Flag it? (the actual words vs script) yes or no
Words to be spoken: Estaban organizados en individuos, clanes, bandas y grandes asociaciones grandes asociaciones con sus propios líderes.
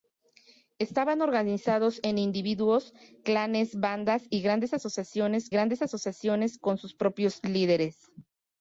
no